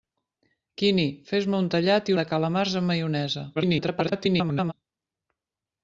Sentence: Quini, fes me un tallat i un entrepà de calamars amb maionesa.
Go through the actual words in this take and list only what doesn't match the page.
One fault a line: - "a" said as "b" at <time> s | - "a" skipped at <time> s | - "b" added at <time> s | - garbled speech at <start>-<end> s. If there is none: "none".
- "un entrepà" skipped at 2.2 s
- garbled speech at 3.5-4.7 s